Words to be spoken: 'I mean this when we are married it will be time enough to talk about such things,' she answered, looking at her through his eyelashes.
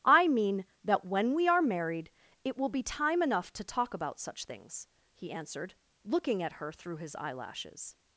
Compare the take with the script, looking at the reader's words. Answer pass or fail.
fail